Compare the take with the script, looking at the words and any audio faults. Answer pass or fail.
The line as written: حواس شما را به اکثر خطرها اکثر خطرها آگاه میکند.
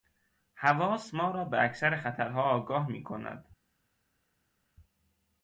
fail